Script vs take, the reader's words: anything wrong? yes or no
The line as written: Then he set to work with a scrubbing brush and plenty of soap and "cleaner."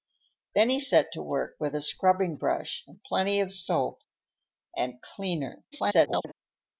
yes